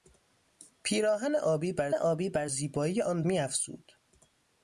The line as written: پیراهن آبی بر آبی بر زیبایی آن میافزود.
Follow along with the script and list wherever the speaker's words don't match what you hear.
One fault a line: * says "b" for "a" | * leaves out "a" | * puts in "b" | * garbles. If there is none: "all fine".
all fine